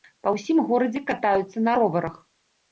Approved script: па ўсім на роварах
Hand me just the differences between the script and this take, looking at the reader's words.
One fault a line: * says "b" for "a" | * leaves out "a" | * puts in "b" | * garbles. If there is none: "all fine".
* puts in "горадзе катаюцца"